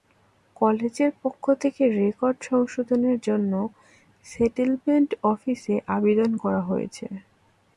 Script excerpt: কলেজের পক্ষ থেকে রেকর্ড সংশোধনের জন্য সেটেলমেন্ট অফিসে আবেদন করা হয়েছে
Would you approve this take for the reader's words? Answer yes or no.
yes